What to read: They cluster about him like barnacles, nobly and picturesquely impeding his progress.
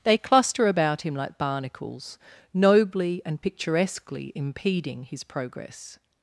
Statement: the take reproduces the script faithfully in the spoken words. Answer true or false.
true